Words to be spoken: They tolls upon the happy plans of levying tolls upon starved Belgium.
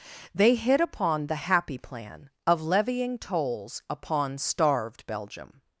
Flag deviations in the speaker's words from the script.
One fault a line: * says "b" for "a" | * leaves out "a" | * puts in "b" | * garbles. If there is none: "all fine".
* says "hit" for "tolls"
* says "plan" for "plans"